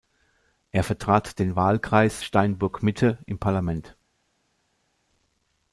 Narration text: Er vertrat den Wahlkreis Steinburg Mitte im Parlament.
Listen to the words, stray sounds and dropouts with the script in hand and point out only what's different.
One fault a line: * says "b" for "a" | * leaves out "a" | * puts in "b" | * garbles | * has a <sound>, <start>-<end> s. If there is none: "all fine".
all fine